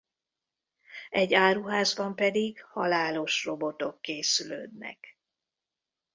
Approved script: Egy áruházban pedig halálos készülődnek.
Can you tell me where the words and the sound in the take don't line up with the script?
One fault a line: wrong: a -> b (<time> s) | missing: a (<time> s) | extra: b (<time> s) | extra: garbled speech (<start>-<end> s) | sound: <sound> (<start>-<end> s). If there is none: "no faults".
extra: robotok (3.4 s)